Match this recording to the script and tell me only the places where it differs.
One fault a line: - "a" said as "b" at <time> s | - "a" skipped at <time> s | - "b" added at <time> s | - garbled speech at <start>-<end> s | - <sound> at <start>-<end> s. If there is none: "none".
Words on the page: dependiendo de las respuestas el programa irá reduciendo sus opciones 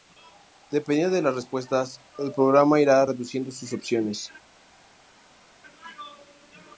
none